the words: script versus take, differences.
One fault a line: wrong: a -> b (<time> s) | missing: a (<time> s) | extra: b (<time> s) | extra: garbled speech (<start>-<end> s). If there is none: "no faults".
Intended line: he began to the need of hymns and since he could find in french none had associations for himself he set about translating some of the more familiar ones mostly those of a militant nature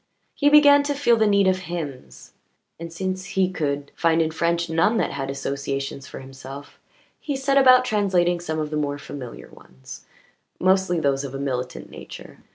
extra: feel (0.9 s)
extra: that (5.0 s)